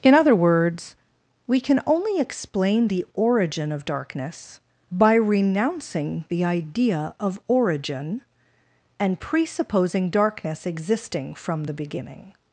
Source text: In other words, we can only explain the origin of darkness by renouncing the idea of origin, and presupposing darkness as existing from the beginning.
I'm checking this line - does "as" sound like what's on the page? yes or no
no